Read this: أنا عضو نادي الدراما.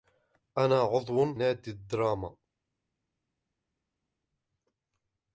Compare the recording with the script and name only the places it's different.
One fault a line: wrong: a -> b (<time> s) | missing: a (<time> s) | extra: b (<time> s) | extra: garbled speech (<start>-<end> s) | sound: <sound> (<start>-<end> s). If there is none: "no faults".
no faults